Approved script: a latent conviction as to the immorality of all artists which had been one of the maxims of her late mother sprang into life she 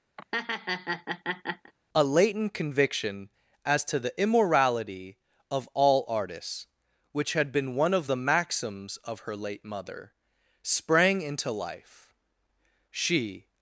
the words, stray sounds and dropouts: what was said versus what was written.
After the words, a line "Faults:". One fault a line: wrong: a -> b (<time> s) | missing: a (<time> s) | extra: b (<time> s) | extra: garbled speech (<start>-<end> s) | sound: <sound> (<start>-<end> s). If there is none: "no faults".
a latent conviction as to the immorality of all artists which had been one of the maxims of her late mother sprang into life she
Faults:
sound: laugh (0.2-1.7 s)